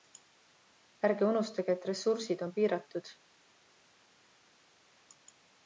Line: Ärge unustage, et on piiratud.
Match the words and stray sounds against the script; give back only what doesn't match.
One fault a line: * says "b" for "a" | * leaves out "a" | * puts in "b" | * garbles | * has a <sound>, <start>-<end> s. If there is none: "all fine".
* puts in "ressursid"